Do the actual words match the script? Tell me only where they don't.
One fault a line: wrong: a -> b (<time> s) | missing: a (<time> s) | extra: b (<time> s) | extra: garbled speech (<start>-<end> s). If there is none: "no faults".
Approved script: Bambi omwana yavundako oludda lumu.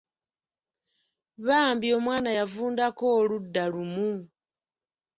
no faults